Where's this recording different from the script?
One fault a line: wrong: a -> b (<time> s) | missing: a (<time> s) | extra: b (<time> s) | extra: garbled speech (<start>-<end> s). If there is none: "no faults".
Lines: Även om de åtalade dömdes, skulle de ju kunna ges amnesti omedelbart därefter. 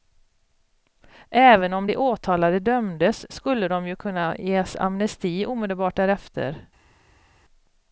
no faults